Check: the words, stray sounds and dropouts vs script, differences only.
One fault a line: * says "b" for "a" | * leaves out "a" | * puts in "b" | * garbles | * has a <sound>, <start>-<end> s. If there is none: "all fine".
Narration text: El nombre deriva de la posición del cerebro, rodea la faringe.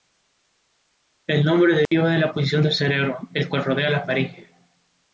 * has a dropout, 1.9-1.9 s
* puts in "el cual"